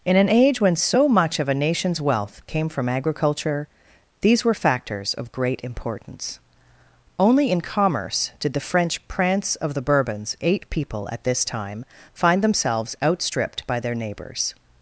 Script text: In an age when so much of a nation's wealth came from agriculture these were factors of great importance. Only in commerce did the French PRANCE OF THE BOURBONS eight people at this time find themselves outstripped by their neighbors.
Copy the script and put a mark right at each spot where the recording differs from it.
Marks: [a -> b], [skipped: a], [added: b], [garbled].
In an age when so much of a nation's wealth came from agriculture these were factors of great importance. Only in commerce did the French PRANCE OF THE BOURBONS eight people at this time find themselves outstripped by their neighbors.